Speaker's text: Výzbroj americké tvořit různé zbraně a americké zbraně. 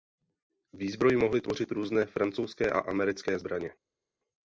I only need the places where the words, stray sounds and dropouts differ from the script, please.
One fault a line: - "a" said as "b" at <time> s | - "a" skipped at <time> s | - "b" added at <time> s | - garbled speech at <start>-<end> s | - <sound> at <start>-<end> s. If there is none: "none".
- "americké" said as "mohly" at 1.2 s
- "zbraně" said as "francouzské" at 2.1 s